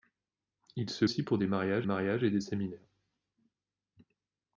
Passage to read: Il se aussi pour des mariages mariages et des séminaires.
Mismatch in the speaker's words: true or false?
false